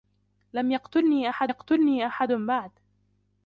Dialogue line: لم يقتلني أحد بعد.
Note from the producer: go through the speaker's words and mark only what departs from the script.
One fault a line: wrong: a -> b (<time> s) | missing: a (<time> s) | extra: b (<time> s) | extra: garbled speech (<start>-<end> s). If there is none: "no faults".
extra: يقتلني أحد (1.5 s)